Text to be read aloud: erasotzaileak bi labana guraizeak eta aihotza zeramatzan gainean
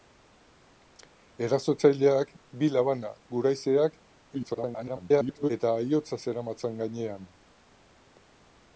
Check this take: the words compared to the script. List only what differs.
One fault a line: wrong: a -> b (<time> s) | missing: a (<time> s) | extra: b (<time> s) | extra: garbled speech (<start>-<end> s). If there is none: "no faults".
extra: garbled speech (4.3-5.5 s)